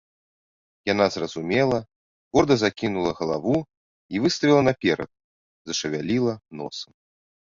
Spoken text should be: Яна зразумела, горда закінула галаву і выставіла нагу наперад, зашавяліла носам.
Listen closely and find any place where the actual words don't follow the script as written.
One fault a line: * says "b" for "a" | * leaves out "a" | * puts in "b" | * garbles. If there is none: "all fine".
* leaves out "нагу"